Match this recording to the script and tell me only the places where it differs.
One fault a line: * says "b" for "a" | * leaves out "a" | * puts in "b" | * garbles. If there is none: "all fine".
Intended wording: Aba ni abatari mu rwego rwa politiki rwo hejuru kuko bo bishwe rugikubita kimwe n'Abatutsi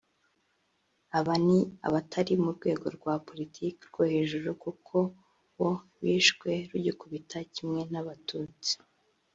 all fine